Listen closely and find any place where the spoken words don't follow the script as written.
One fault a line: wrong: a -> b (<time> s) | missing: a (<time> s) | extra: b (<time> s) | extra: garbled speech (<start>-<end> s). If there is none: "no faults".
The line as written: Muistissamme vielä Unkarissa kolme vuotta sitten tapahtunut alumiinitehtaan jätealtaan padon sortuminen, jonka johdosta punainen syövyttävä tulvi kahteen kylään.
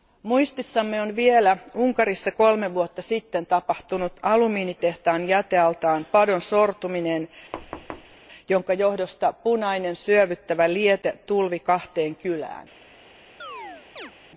extra: on (1.0 s)
extra: liete (10.7 s)